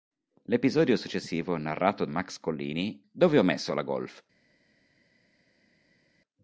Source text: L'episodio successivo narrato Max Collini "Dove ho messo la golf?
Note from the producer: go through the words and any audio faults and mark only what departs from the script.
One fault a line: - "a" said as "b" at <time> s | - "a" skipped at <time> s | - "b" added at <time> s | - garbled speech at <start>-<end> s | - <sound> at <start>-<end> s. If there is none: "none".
none